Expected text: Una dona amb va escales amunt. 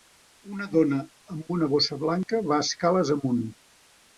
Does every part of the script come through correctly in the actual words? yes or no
no